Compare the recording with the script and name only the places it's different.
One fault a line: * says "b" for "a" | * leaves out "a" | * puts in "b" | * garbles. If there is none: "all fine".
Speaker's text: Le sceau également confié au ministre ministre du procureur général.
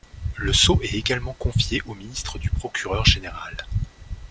* puts in "est"
* leaves out "ministre"